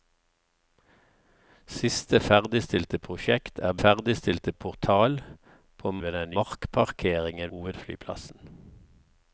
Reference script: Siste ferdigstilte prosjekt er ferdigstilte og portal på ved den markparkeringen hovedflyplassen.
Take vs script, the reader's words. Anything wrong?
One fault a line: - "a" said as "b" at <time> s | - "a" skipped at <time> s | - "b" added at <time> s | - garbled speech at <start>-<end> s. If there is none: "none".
none